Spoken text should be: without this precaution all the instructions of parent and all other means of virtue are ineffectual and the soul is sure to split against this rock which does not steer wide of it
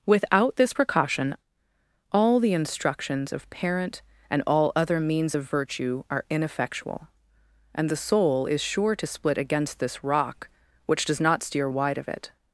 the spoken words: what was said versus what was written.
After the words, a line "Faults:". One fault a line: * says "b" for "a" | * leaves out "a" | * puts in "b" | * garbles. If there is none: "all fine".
without this precaution all the instructions of parent and all other means of virtue are ineffectual and the soul is sure to split against this rock which does not steer wide of it
Faults:
all fine